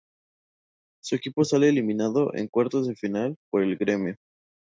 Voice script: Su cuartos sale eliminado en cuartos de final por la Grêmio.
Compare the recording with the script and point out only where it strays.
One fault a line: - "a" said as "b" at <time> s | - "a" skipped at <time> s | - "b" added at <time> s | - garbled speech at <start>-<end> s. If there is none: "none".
- "cuartos" said as "equipo" at 1.1 s
- "la" said as "el" at 3.6 s